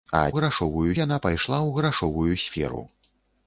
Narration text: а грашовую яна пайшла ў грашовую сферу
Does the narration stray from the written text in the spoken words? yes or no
no